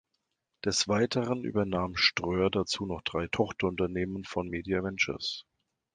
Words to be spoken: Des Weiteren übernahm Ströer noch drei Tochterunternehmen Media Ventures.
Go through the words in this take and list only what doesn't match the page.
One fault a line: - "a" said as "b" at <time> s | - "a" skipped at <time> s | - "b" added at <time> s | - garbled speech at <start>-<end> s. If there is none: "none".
- "dazu" added at 2.5 s
- "von" added at 4.2 s